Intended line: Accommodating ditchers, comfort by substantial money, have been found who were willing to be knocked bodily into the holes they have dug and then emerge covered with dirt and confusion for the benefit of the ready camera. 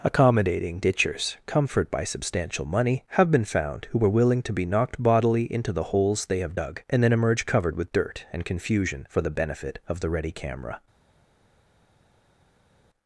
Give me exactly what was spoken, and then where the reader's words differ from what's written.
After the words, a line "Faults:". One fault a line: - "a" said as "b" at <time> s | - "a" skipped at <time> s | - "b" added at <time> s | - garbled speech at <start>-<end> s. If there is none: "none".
Accommodating ditchers, comfort by substantial money, have been found who were willing to be knocked bodily into the holes they have dug and then emerge covered with dirt and confusion for the benefit of the ready camera.
Faults:
none